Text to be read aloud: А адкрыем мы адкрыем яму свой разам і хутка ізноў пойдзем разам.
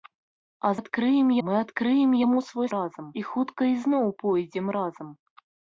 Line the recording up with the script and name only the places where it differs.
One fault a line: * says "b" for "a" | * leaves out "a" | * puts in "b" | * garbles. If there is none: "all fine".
all fine